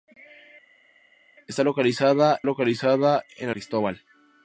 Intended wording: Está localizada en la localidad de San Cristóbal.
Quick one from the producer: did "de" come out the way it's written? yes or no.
no